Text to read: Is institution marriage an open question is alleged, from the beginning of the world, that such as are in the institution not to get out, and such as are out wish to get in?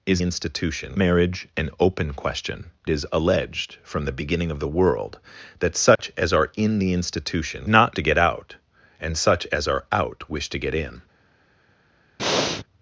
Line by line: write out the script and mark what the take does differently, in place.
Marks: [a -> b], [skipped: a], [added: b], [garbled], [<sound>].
Is institution marriage an open question is alleged, from the beginning of the world, that such [dropout] as are in the institution not to get out, and such as are out wish to get in? [breath]